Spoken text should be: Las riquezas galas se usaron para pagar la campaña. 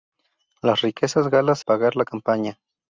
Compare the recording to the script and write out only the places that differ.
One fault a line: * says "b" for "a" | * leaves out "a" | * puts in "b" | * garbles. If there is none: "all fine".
* leaves out "se usaron para"